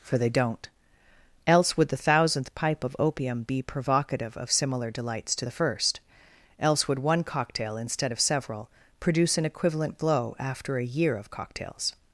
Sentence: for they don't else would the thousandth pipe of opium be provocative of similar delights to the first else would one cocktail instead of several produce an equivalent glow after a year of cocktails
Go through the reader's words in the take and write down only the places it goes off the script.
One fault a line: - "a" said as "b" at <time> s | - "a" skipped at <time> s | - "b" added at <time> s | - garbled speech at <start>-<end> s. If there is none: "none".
none